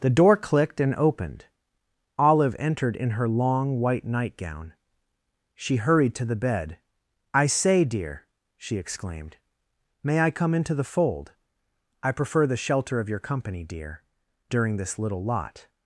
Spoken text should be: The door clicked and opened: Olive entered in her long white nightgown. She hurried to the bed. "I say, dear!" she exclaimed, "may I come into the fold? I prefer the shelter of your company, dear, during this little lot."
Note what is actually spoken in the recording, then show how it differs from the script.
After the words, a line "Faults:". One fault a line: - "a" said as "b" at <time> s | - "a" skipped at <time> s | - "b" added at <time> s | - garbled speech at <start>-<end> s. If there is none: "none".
The door clicked and opened: Olive entered in her long white nightgown. She hurried to the bed. "I say, dear!" she exclaimed, "may I come into the fold? I prefer the shelter of your company, dear, during this little lot."
Faults:
none